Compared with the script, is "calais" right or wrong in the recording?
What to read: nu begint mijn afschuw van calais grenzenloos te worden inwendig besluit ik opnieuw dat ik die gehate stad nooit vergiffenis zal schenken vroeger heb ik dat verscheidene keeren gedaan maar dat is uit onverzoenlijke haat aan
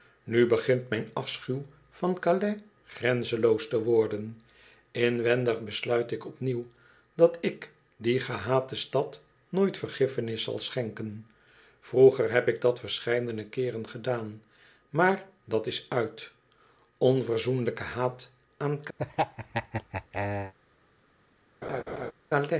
right